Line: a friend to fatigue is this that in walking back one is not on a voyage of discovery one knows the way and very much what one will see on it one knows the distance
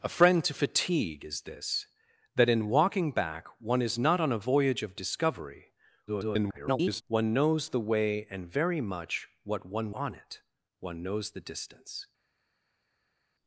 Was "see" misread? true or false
true